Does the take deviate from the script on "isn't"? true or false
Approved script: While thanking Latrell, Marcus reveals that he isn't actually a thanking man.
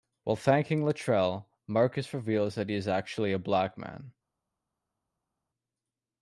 true